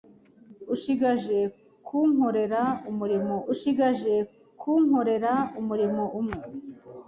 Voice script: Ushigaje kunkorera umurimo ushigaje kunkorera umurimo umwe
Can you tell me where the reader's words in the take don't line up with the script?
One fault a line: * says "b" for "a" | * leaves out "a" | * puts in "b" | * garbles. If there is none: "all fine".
all fine